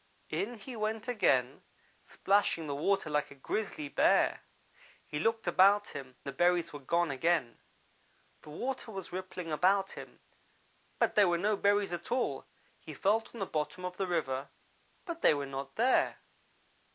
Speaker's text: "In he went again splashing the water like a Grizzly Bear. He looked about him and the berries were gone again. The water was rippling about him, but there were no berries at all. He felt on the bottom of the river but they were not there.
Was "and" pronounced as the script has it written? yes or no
no